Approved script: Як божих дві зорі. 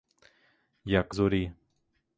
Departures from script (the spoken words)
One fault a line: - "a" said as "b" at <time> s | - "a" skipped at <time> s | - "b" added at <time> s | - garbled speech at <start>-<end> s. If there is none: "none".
- "божих дві" skipped at 1.1 s